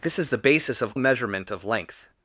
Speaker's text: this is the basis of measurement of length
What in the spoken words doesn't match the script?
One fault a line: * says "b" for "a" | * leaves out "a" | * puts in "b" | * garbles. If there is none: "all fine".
all fine